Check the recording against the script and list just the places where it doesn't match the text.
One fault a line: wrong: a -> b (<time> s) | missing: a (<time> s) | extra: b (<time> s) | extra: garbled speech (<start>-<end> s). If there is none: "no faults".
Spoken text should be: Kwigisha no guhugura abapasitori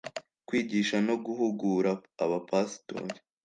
no faults